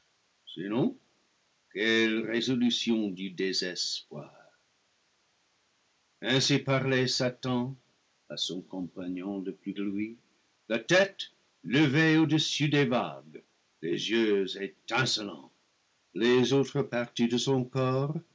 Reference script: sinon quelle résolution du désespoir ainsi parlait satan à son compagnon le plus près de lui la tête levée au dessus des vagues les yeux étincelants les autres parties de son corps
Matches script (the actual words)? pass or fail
fail